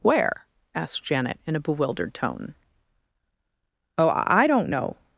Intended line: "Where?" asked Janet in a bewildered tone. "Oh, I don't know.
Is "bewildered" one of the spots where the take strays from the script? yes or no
no